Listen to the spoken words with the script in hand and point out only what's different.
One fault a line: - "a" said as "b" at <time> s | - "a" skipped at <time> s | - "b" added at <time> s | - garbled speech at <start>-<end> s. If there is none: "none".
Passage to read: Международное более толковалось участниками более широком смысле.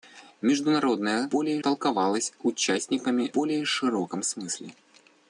none